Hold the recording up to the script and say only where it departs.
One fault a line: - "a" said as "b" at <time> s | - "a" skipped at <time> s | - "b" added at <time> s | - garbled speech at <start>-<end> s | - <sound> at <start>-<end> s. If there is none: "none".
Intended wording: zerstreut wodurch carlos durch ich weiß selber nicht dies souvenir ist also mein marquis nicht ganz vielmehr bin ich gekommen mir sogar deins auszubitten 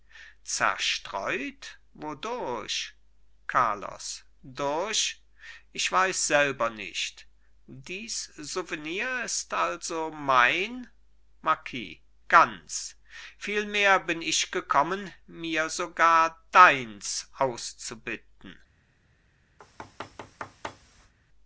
- "nicht" skipped at 12.0 s
- thud at 19.6-21.1 s